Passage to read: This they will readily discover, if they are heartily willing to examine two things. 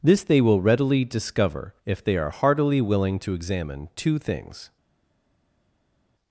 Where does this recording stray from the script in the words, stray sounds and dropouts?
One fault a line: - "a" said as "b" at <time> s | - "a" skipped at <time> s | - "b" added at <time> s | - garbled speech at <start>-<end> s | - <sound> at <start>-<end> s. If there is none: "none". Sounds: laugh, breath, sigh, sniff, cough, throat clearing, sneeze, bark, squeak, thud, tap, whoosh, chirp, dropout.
none